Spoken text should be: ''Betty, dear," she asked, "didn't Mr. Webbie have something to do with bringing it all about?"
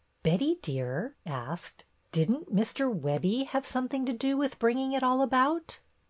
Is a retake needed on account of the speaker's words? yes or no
yes